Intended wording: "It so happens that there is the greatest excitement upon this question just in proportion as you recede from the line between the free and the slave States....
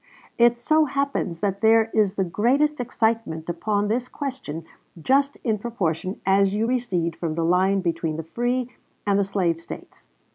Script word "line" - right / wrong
right